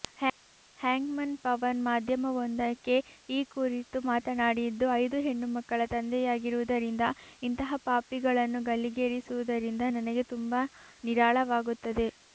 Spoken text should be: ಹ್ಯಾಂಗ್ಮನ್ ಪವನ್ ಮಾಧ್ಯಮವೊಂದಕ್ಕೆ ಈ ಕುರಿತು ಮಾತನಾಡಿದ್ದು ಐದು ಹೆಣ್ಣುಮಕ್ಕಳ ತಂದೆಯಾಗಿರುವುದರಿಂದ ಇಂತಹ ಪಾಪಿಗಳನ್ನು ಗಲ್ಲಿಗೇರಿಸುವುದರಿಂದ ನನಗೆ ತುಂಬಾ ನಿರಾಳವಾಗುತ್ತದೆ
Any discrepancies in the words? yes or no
no